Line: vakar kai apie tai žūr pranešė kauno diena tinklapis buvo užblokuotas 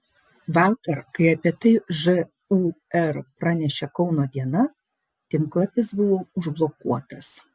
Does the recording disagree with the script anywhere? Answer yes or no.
no